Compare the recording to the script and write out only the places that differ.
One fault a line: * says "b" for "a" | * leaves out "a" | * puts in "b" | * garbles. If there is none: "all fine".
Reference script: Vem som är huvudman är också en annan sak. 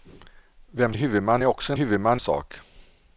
* leaves out "som"
* says "huvudman" for "annan"